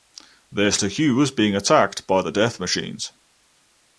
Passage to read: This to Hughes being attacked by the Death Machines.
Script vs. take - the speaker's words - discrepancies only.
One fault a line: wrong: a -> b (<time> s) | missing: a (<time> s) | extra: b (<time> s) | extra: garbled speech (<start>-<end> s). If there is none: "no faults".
no faults